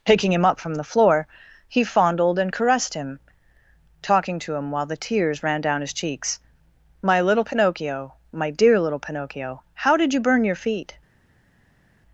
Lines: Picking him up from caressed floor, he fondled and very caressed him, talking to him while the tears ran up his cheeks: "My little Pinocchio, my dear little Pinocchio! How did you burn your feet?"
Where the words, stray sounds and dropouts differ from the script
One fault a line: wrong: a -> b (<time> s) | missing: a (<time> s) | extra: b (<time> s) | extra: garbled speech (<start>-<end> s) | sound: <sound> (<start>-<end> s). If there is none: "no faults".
wrong: caressed -> the (0.7 s)
missing: very (2.5 s)
wrong: up -> down (5.6 s)